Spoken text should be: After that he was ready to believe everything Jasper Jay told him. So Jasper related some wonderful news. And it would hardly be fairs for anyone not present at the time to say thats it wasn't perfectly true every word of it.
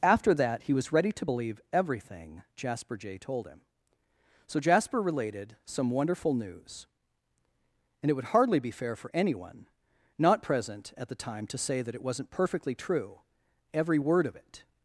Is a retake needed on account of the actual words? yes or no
yes